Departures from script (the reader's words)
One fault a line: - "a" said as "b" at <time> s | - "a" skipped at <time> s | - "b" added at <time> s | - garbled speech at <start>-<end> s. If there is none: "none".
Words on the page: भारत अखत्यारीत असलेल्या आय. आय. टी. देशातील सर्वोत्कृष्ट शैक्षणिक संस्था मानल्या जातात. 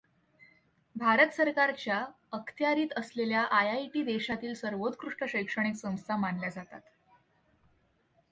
- "सरकारच्या" added at 1.3 s